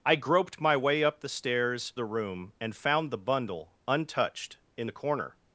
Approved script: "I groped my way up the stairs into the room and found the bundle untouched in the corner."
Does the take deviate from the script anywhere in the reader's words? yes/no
yes